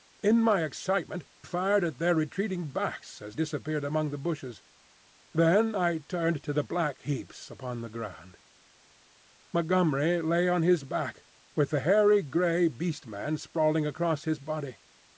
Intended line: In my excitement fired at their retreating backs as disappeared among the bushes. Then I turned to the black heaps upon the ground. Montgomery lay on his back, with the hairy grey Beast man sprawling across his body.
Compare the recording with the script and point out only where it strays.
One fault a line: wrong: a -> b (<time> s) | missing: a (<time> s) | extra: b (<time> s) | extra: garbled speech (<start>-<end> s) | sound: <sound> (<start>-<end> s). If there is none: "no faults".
no faults